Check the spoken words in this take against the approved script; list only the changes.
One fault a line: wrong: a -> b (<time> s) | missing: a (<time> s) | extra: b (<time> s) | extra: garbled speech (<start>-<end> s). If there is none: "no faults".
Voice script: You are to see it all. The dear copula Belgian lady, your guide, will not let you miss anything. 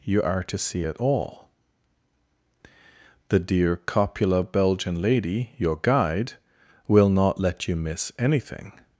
no faults